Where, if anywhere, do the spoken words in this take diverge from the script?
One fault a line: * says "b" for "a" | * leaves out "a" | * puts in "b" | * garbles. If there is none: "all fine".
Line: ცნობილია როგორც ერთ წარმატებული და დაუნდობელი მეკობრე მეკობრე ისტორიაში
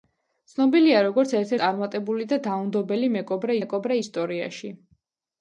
all fine